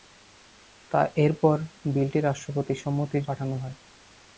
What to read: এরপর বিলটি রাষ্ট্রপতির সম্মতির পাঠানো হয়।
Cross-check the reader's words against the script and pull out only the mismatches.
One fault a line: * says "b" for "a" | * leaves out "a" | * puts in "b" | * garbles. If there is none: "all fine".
all fine